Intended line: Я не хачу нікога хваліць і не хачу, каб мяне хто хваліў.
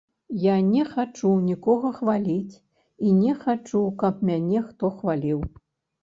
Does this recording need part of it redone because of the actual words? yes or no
no